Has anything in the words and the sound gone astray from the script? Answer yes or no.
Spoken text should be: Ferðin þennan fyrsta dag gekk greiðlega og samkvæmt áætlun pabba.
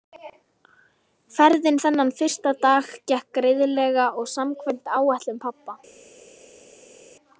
no